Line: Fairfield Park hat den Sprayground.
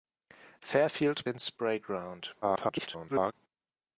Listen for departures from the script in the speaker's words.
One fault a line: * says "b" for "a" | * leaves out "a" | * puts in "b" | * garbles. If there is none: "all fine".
* leaves out "Park hat"
* garbles